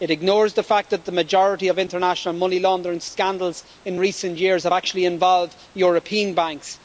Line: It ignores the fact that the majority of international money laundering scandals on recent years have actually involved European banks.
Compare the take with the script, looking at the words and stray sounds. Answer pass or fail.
fail